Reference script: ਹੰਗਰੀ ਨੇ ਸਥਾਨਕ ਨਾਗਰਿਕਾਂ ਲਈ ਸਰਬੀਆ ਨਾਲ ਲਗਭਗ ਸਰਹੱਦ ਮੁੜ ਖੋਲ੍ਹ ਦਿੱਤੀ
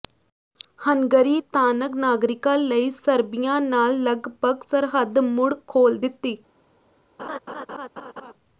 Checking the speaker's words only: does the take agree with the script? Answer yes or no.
no